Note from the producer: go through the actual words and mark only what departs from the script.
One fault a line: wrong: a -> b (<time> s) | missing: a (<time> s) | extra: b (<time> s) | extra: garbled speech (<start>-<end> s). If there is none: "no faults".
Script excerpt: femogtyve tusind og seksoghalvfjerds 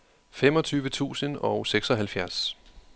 no faults